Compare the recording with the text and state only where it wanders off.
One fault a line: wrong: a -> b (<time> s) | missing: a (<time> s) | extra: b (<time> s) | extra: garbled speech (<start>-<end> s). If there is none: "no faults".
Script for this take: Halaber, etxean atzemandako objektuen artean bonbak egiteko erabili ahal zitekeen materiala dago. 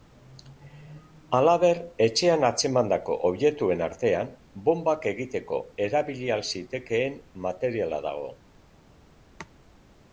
no faults